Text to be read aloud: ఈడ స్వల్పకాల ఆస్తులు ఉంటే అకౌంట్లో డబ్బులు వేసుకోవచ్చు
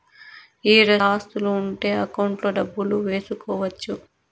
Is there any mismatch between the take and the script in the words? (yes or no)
yes